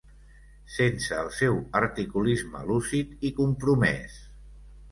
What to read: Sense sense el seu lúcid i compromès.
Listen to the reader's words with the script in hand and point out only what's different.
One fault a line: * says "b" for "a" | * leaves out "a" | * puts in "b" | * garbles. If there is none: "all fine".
* leaves out "sense"
* puts in "articulisme"